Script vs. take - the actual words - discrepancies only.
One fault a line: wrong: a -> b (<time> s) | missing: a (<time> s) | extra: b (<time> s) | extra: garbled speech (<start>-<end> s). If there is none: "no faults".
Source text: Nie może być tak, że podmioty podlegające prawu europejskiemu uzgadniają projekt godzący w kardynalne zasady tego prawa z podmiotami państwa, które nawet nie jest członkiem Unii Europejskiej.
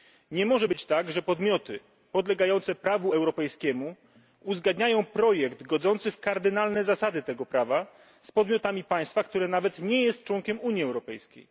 no faults